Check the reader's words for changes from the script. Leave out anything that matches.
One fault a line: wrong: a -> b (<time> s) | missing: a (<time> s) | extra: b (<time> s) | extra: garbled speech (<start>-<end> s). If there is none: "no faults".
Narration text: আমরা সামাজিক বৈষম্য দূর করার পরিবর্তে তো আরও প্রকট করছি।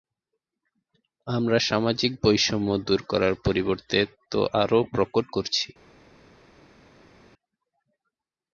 no faults